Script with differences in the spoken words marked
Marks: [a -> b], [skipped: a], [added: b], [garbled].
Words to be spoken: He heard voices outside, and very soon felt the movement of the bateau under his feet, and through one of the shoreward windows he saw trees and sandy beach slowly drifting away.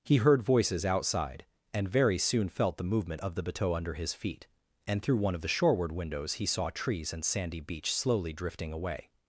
He heard voices outside, and very soon felt the movement of the bateau under his feet, and through one of the shoreward windows he saw trees and sandy beach slowly drifting away.